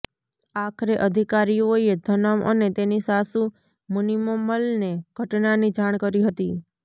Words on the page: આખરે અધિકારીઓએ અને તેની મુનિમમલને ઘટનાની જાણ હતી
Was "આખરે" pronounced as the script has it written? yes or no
yes